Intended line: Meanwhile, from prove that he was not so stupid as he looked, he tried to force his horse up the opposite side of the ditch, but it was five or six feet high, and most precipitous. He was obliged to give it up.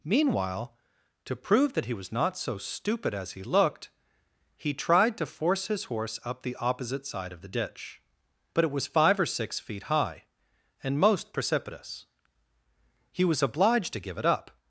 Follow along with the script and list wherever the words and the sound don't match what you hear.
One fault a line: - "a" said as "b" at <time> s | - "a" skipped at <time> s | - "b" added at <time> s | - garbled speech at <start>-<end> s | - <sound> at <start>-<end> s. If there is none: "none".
- "from" said as "to" at 1.2 s